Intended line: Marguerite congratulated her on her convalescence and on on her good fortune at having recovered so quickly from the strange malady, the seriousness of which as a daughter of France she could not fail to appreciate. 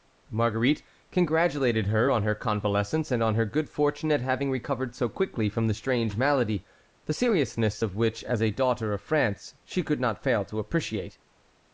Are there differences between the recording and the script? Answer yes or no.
yes